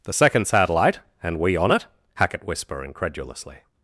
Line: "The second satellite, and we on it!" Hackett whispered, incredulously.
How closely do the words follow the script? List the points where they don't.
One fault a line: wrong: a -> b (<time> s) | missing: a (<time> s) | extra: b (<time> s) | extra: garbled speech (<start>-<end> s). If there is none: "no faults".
wrong: whispered -> whisper (2.5 s)